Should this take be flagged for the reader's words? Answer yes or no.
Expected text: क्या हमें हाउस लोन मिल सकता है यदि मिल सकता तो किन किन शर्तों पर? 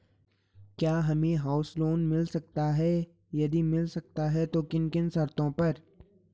yes